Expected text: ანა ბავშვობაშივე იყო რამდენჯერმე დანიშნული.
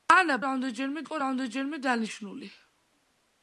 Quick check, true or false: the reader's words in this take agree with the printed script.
false